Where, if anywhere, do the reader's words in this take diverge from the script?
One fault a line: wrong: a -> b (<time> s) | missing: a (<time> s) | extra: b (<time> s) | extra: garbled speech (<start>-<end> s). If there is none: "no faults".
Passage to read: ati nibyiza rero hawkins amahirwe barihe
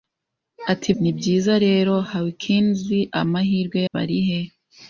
no faults